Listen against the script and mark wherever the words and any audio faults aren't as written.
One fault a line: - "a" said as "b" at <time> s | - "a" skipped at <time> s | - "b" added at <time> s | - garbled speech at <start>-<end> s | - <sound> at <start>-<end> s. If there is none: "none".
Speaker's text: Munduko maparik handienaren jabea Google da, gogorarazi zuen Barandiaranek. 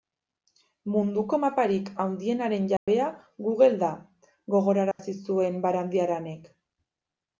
- dropout at 2.8-2.9 s
- dropout at 4.9-5.0 s